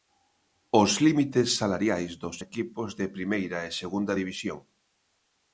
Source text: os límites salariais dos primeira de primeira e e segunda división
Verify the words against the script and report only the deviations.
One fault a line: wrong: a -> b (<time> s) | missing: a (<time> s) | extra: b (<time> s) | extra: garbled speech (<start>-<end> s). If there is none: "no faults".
wrong: primeira -> equipos (2.5 s)
missing: e (3.8 s)